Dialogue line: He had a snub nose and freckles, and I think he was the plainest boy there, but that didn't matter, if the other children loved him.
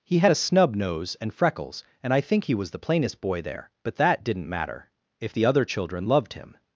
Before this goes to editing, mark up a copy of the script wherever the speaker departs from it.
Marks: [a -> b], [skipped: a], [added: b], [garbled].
He had a snub nose and freckles, and I think he was the plainest boy there, but that didn't matter, if the other children loved him.